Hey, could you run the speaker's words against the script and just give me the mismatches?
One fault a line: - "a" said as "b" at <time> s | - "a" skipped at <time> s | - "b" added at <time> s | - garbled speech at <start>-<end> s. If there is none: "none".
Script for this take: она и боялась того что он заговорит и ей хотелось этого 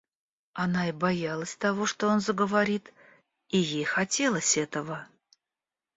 none